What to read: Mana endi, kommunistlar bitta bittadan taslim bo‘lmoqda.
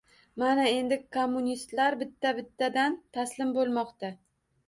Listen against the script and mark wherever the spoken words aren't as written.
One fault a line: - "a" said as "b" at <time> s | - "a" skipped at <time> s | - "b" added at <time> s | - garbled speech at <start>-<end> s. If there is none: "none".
none